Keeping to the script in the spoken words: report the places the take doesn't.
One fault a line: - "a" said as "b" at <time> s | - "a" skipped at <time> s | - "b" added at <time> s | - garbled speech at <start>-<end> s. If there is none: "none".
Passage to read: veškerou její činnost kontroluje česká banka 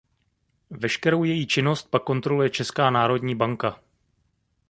- "pak" added at 1.9 s
- "národní" added at 2.9 s